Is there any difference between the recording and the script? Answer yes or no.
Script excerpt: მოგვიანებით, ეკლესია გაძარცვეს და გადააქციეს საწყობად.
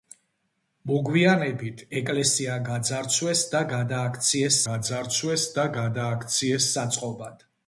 yes